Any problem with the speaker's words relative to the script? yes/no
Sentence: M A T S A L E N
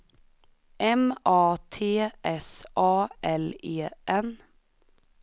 no